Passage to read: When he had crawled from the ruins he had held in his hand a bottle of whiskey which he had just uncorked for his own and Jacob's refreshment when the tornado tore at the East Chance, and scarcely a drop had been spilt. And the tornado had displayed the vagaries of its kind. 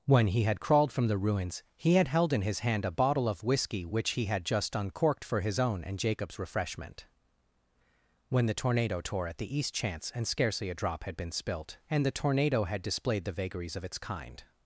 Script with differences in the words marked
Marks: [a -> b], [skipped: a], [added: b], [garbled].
When he had crawled from the ruins he had held in his hand a bottle of whiskey which he had just uncorked for his own and Jacob's refreshment when the tornado tore at the East Chance, and scarcely a drop had been spilt. And the tornado had displayed the vagaries of its kind.